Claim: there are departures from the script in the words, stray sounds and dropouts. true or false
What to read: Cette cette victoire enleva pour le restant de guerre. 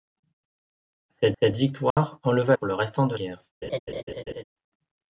true